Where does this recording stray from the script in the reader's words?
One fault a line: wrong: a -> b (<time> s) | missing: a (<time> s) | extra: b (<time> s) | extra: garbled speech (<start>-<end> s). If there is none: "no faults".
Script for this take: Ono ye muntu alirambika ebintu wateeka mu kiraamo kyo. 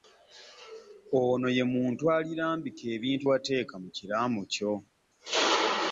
no faults